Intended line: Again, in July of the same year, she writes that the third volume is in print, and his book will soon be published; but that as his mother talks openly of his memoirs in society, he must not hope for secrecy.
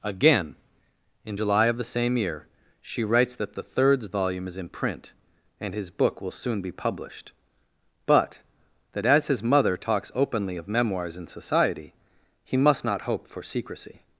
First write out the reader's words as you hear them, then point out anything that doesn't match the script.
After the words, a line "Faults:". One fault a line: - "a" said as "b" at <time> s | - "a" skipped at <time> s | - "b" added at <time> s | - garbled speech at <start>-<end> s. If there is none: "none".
Again, in July of the same year, she writes that the thirds volume is in print, and his book will soon be published; but that as his mother talks openly of memoirs in society, he must not hope for secrecy.
Faults:
- "third" said as "thirds" at 3.6 s
- "his" skipped at 10.7 s